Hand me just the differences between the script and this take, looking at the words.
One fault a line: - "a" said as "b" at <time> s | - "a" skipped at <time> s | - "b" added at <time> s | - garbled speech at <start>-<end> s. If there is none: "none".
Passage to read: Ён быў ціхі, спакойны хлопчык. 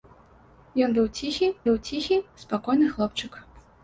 - "быў ціхі" added at 1.7 s